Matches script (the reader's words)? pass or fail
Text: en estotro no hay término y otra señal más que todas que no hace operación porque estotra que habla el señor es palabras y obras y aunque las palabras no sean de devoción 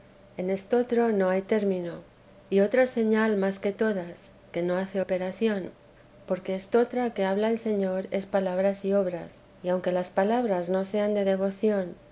pass